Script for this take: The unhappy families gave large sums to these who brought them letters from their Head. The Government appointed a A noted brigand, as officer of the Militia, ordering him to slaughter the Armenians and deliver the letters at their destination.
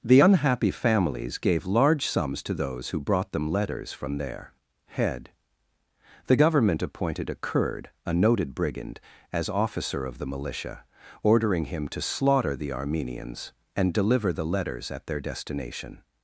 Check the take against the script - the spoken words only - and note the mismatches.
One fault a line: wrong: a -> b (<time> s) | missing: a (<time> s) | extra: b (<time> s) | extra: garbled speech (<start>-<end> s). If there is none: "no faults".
wrong: these -> those (2.5 s)
extra: Kurd (7.3 s)